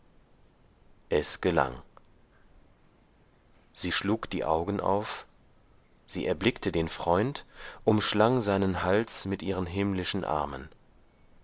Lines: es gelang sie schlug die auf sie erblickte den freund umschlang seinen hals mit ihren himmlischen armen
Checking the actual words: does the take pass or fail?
fail